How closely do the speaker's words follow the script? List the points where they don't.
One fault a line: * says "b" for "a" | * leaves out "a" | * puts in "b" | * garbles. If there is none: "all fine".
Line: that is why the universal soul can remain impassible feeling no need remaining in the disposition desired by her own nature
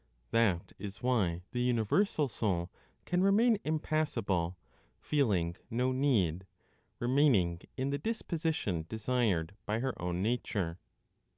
all fine